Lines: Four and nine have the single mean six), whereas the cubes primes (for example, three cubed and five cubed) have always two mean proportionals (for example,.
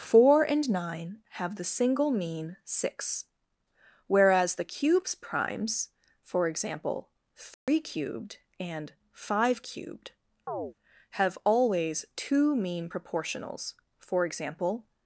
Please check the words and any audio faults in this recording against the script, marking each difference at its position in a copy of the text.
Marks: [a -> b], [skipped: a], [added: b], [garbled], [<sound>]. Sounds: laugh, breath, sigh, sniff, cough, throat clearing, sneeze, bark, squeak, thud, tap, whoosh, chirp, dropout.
Four and nine have the single mean six), whereas the cubes primes (for example, three [dropout] cubed and five cubed) [chirp] have always two mean proportionals (for example,.